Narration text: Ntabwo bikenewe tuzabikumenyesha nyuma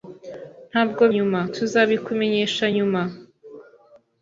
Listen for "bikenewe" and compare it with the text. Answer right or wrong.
wrong